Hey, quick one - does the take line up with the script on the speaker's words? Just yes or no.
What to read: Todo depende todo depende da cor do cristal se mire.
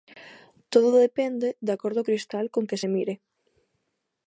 no